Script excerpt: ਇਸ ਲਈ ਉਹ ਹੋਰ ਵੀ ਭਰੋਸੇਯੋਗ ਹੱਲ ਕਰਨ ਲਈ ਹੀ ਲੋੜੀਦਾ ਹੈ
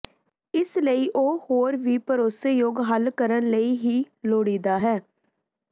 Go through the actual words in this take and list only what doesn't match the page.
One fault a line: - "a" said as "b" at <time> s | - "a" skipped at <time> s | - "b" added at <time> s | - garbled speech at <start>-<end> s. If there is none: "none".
none